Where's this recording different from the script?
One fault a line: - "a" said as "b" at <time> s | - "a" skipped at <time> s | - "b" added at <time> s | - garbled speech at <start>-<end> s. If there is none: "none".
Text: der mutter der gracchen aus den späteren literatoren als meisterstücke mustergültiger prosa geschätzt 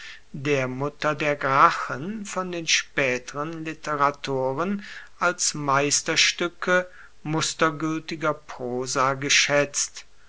- "aus" said as "von" at 2.2 s